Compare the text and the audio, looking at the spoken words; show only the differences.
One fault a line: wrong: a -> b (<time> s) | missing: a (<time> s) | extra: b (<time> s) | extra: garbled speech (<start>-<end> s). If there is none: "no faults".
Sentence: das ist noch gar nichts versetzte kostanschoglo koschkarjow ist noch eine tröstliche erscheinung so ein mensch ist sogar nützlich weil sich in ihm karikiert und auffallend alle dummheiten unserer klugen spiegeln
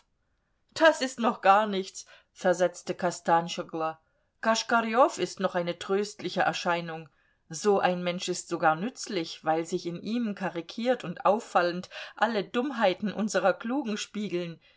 no faults